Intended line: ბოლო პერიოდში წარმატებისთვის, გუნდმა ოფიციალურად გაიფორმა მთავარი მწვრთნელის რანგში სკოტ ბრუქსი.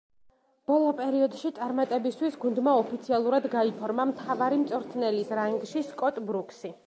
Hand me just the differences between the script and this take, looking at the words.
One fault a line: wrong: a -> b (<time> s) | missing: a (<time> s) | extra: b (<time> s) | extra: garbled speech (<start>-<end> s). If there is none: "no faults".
no faults